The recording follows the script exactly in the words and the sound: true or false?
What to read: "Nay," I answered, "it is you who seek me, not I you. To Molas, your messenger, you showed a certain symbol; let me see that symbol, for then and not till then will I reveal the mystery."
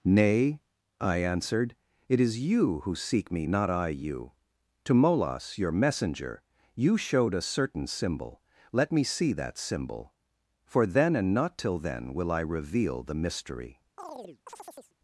false